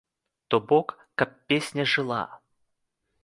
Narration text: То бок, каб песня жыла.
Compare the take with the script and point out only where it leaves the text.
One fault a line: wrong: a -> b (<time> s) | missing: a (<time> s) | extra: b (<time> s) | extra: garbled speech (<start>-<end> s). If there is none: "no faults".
no faults